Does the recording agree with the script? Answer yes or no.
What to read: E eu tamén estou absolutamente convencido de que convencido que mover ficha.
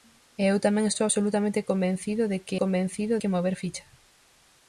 yes